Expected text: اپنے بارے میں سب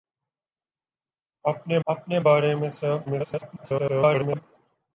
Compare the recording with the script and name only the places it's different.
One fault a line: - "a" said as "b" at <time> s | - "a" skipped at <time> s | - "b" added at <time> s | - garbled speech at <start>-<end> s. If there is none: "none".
- "اپنے" added at 1.9 s
- garbled speech at 3.1-4.4 s